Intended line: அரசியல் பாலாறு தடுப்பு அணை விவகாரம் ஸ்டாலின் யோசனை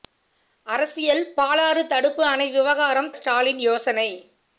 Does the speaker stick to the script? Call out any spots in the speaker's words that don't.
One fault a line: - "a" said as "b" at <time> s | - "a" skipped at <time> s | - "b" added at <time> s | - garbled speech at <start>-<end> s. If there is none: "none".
none